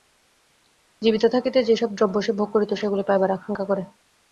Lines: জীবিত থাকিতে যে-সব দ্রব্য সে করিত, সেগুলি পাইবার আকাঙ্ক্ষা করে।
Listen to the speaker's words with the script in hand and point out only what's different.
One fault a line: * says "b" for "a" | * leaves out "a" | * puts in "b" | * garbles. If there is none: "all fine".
* puts in "ভোগ"